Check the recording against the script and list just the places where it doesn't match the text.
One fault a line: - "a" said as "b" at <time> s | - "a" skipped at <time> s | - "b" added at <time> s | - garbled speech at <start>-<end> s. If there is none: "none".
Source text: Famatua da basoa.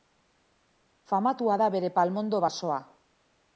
- "bere palmondo" added at 1.8 s